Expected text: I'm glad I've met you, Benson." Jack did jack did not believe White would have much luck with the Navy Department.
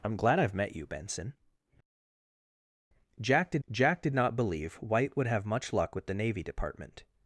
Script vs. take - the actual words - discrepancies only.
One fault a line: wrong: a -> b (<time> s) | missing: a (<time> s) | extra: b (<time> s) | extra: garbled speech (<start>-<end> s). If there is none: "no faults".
no faults